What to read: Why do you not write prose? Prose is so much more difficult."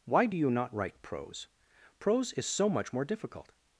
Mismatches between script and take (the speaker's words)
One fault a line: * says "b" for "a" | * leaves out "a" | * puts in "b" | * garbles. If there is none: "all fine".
all fine